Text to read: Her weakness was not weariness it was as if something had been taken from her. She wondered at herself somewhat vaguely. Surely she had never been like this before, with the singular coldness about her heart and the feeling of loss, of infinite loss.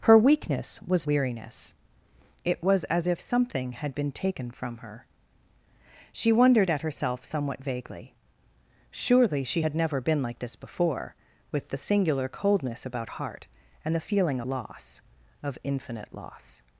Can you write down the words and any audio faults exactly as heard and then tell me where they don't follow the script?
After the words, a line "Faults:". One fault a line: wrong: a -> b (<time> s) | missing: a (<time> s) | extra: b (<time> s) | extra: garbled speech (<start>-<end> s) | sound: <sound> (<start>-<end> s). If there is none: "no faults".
Her weakness was weariness it was as if something had been taken from her. She wondered at herself somewhat vaguely. Surely she had never been like this before, with the singular coldness about heart and the feeling loss, of infinite loss.
Faults:
missing: not (1.1 s)
missing: her (13.1 s)
missing: of (14.4 s)